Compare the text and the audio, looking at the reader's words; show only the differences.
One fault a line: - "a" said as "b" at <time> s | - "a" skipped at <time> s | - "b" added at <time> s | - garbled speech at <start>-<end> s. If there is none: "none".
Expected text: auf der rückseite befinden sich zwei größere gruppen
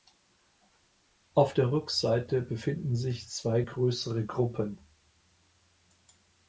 none